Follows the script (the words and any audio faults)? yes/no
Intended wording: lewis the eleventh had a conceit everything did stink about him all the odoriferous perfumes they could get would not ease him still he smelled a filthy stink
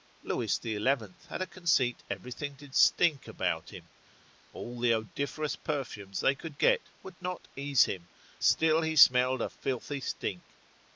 yes